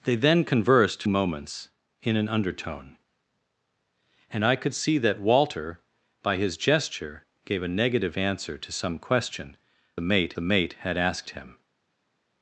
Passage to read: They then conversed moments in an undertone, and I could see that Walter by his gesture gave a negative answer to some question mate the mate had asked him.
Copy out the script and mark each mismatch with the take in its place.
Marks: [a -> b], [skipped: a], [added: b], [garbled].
They then conversed moments in an undertone, and I could see that Walter by his gesture gave a negative answer to some question mate the mate had asked him.